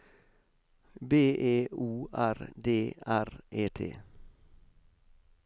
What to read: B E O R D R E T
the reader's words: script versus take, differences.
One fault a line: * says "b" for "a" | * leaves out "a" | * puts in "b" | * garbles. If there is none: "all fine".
all fine